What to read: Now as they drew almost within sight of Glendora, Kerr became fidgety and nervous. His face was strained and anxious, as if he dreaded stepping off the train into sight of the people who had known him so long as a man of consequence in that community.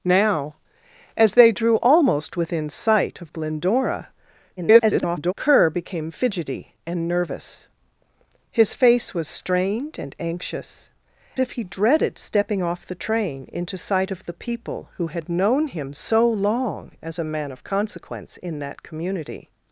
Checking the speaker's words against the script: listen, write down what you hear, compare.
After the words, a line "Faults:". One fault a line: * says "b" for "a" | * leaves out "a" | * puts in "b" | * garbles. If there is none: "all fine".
Now as they drew almost within sight of Glendora, [garbled] Kerr became fidgety and nervous. His face was strained and anxious, if he dreaded stepping off the train into sight of the people who had known him so long as a man of consequence in that community.
Faults:
* garbles
* leaves out "as"